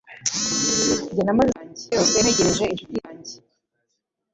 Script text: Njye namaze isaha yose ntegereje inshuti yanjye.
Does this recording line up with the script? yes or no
no